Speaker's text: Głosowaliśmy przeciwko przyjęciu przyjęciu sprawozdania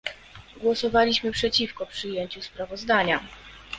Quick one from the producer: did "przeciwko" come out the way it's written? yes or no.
yes